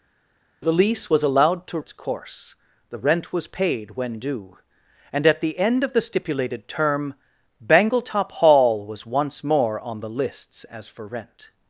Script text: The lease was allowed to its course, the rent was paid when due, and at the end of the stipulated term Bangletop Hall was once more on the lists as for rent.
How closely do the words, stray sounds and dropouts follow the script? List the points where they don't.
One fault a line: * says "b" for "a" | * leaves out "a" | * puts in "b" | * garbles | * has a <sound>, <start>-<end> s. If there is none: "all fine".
all fine